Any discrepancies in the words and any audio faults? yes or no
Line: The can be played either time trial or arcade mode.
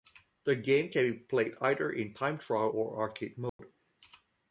yes